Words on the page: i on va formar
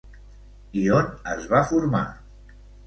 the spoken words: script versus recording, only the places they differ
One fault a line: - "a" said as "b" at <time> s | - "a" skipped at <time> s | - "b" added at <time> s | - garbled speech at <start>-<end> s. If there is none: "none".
- "es" added at 1.3 s